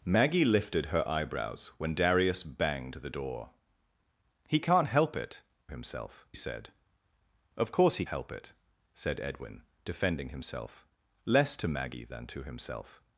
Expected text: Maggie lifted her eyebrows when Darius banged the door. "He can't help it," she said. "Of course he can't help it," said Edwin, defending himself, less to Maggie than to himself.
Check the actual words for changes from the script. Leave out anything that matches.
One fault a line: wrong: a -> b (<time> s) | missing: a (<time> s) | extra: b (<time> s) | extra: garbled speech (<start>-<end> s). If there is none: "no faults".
wrong: she -> himself (5.7 s)
missing: can't (8.1 s)